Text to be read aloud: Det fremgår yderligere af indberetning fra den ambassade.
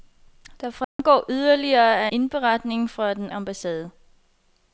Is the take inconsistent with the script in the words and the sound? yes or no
yes